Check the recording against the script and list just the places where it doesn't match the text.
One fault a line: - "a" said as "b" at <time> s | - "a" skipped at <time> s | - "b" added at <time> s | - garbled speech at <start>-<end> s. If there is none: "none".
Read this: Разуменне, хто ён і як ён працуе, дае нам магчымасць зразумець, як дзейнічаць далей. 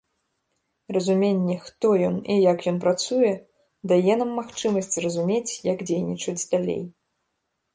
none